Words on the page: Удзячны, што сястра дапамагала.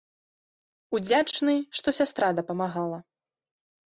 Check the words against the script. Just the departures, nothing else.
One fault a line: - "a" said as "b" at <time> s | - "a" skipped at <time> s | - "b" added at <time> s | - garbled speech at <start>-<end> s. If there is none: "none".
none